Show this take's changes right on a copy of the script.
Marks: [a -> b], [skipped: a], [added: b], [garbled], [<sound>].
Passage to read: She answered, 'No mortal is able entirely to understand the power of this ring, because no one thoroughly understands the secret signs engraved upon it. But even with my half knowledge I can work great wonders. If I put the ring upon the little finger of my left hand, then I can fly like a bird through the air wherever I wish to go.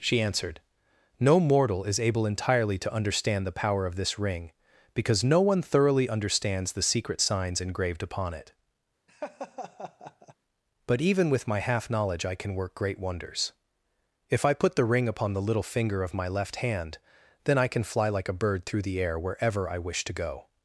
She answered, 'No mortal is able entirely to understand the power of this ring, because no one thoroughly understands the secret signs engraved upon it. [laugh] But even with my half knowledge I can work great wonders. If I put the ring upon the little finger of my left hand, then I can fly like a bird through the air wherever I wish to go.